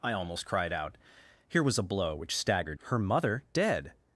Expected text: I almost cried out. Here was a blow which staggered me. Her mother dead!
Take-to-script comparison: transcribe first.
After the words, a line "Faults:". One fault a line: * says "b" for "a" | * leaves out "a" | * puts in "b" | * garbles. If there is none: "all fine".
I almost cried out. Here was a blow which staggered. Her mother dead!
Faults:
* leaves out "me"